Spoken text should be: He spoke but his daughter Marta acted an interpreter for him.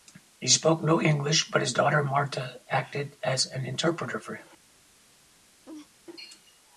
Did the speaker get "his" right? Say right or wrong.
right